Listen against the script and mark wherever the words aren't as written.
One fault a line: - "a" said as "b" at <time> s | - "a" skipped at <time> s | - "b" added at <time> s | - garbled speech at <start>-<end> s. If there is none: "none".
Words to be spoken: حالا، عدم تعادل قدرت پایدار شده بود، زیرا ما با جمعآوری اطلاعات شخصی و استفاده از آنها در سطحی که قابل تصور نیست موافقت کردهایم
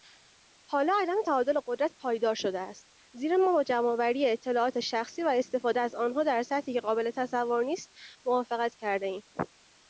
- "بود" said as "است" at 2.6 s